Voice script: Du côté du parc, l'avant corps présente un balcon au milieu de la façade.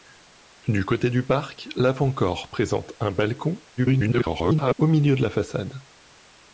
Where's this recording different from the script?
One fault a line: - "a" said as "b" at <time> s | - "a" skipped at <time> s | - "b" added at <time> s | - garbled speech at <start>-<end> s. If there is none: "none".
- garbled speech at 3.8-4.7 s